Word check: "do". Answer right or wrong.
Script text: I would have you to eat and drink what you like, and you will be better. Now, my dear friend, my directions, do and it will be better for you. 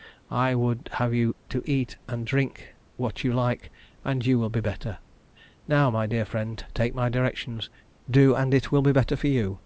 right